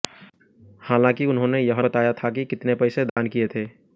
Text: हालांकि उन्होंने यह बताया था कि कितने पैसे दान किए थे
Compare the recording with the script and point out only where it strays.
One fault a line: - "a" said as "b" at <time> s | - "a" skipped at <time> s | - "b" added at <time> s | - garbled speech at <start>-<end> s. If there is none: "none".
none